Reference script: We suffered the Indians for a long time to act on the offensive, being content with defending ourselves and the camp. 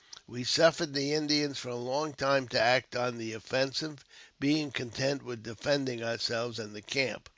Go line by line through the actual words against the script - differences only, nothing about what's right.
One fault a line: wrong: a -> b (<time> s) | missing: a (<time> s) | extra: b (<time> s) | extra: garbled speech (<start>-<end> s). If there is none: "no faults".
no faults